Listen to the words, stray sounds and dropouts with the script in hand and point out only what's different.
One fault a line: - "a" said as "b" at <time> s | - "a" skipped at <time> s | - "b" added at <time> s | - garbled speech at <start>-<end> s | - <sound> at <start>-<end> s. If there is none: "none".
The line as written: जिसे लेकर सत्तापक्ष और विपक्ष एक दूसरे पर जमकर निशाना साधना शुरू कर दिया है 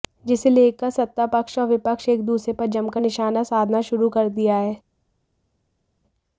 none